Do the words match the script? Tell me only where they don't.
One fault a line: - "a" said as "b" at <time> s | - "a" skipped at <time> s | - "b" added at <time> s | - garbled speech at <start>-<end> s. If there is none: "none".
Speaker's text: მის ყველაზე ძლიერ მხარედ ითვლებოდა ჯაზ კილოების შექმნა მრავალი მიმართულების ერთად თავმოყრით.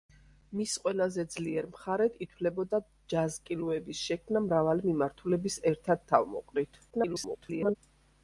- garbled speech at 6.9-7.8 s